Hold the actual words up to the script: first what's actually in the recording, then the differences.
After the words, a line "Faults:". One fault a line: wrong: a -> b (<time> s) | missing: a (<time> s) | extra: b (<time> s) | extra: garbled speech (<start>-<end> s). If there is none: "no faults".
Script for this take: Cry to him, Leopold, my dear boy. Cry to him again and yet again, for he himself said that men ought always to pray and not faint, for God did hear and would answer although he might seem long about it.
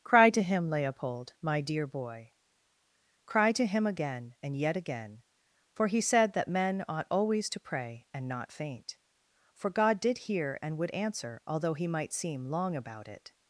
Cry to him, Leopold, my dear boy. Cry to him again and yet again, for he said that men ought always to pray and not faint, for God did hear and would answer although he might seem long about it.
Faults:
missing: himself (6.0 s)